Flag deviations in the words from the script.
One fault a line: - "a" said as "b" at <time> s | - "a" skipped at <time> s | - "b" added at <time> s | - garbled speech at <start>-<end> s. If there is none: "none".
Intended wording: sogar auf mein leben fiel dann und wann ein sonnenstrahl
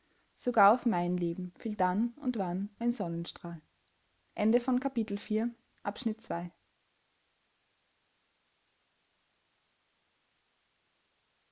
none